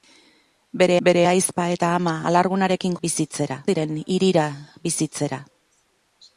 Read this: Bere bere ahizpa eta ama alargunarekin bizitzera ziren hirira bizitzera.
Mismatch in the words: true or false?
false